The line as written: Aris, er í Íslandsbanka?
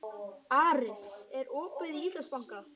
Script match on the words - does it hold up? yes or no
no